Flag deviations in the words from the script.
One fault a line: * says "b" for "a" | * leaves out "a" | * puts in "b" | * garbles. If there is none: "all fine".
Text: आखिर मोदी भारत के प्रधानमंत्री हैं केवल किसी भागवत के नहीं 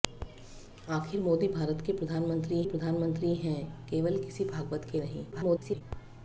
* puts in "प्रधानमंत्री"
* garbles